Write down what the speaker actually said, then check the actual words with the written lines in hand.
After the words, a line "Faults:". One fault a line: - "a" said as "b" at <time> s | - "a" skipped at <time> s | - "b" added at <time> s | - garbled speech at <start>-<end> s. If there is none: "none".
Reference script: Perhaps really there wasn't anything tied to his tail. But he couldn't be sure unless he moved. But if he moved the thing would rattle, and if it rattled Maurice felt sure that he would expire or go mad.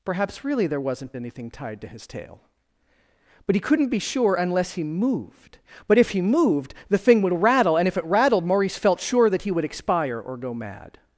Perhaps really there wasn't anything tied to his tail. But he couldn't be sure unless he moved. But if he moved the thing would rattle, and if it rattled Maurice felt sure that he would expire or go mad.
Faults:
none